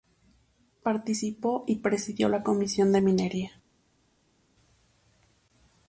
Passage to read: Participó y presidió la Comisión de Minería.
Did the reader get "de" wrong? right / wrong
right